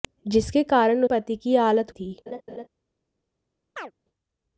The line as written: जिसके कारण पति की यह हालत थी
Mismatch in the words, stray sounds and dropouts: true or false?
true